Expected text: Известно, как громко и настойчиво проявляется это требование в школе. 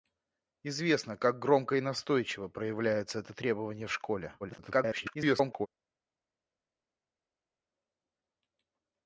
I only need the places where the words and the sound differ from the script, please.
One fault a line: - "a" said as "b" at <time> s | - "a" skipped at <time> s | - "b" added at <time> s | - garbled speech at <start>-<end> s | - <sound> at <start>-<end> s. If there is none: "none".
- garbled speech at 4.4-5.7 s